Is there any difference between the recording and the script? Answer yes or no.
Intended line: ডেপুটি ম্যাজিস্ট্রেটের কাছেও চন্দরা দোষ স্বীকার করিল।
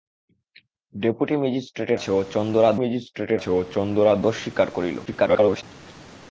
yes